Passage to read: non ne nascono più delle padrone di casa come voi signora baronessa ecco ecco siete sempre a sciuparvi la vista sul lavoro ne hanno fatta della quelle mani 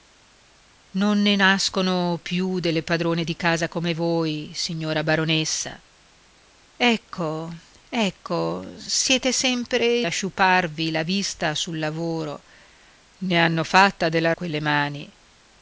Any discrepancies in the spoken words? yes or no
no